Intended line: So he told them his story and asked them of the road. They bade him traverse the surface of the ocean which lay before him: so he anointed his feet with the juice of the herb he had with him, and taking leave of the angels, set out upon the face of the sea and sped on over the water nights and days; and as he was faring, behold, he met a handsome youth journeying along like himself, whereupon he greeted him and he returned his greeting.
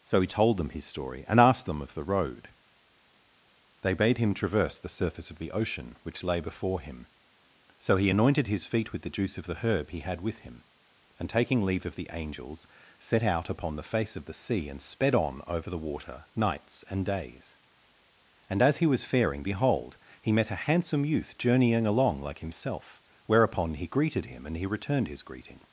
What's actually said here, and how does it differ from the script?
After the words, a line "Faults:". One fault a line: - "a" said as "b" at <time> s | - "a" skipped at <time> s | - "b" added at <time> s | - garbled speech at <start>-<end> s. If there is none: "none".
So he told them his story and asked them of the road. They bade him traverse the surface of the ocean which lay before him: so he anointed his feet with the juice of the herb he had with him, and taking leave of the angels, set out upon the face of the sea and sped on over the water nights and days; and as he was faring, behold, he met a handsome youth journeying along like himself, whereupon he greeted him and he returned his greeting.
Faults:
none